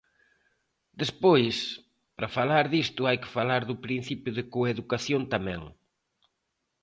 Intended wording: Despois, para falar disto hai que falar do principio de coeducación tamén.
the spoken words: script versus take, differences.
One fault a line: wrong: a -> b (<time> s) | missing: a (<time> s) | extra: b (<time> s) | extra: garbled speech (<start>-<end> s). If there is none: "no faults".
no faults